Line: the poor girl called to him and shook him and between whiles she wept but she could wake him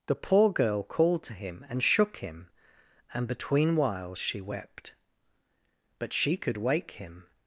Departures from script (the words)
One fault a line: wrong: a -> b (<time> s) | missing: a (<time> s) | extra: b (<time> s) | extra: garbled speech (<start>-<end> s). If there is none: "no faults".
no faults